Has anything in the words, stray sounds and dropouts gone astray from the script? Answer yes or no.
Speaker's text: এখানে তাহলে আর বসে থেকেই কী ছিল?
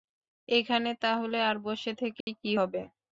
yes